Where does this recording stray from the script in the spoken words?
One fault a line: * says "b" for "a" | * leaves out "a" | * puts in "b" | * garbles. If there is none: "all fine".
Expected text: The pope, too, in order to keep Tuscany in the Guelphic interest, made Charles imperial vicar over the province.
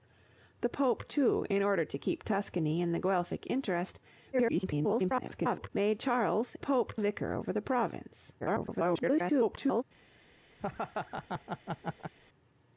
* garbles
* says "pope" for "imperial"
* garbles